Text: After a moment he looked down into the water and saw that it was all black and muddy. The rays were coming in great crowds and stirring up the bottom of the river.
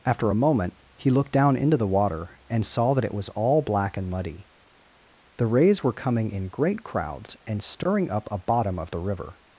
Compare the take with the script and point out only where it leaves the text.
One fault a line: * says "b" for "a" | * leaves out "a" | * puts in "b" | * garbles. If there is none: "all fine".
* says "a" for "the"